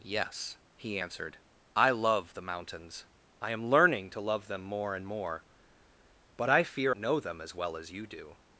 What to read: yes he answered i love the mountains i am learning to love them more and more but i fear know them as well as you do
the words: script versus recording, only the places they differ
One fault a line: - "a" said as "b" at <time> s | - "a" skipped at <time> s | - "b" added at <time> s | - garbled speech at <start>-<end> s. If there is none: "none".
none